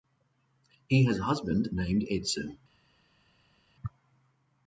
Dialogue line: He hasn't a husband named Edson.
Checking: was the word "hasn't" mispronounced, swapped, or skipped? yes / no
yes